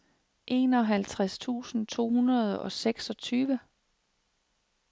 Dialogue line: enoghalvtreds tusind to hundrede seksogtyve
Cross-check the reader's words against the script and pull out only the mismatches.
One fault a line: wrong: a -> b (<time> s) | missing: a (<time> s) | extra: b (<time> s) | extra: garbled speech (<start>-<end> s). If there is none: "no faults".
extra: og (2.6 s)